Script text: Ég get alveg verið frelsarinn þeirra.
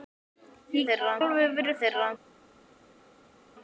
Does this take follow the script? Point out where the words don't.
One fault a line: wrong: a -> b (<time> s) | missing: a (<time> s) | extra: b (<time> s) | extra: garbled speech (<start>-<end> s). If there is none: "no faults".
wrong: get -> þeirra (0.9 s)
missing: frelsarinn (1.8 s)